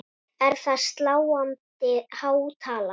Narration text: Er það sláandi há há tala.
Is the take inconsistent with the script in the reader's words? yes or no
yes